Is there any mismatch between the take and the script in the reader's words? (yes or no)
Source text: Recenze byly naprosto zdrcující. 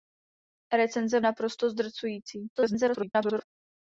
yes